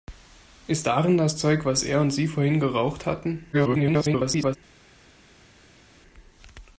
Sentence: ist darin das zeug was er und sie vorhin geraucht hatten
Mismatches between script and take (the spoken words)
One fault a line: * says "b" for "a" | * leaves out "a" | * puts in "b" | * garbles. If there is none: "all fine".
* garbles